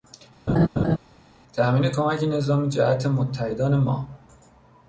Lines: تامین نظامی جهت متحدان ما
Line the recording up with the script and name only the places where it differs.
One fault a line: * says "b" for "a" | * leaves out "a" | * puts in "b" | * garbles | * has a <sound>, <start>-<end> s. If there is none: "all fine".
* has a laugh, 0.5-1.0 s
* puts in "کمک"